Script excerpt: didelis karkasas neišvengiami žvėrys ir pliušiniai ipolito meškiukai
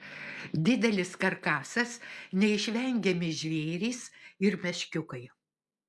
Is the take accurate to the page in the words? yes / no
no